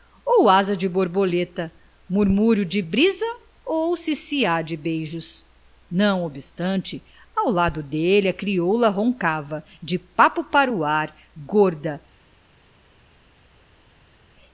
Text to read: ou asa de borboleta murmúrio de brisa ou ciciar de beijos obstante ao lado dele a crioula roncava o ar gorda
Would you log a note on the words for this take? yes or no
yes